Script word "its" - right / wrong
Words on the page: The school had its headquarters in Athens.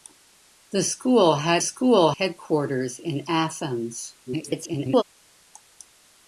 wrong